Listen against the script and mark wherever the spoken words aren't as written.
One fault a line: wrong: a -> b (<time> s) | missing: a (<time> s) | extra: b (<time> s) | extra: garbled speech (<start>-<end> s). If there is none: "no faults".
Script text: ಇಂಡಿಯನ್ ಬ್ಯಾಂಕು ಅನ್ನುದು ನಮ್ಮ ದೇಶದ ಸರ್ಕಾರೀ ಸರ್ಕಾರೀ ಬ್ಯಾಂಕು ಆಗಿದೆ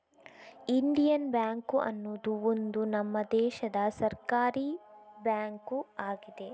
extra: ಒಂದು (2.4 s)
missing: ಸರ್ಕಾರೀ (4.7 s)